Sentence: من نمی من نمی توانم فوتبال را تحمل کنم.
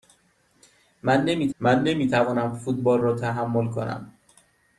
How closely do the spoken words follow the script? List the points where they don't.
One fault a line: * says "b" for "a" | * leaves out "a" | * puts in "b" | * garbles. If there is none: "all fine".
all fine